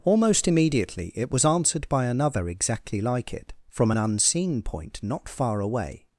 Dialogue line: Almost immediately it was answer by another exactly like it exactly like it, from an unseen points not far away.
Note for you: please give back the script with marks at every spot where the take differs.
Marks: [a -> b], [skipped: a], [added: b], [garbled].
Almost immediately it was [answer -> answered] by another exactly like it [skipped: exactly like it,] from an unseen [points -> point] not far away.